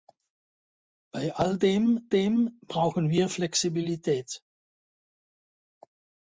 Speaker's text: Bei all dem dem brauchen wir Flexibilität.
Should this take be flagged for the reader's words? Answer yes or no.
no